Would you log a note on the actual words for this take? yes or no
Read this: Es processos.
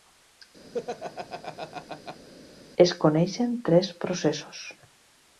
yes